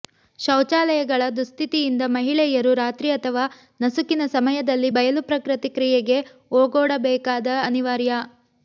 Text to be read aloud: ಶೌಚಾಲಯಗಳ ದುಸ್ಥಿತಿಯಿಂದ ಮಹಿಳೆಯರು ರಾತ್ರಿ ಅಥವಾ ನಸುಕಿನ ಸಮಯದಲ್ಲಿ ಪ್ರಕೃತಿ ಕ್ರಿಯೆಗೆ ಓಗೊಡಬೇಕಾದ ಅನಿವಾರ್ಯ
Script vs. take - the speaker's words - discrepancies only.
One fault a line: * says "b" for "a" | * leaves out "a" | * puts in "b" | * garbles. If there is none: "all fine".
* puts in "ಬಯಲು"